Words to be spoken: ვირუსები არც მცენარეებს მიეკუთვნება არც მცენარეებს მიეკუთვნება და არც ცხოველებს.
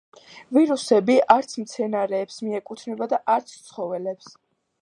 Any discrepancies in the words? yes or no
yes